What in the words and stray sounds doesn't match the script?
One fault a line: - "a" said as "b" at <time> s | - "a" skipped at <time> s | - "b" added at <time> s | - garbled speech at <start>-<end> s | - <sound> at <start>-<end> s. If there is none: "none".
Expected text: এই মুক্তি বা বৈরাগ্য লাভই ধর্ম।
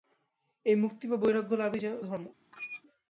- squeak at 2.5-2.8 s